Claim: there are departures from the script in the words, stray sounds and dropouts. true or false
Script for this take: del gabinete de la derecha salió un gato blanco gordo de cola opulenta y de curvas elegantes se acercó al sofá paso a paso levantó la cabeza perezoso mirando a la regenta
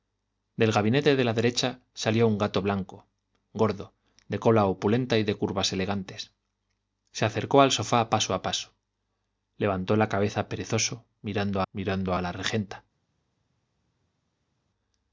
true